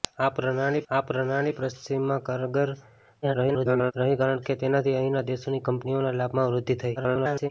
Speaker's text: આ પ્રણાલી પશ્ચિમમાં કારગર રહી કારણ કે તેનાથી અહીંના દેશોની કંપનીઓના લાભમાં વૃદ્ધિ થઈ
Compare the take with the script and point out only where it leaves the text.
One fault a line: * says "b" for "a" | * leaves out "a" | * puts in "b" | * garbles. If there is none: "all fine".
* puts in "આ પ્રણાલી"
* garbles
* garbles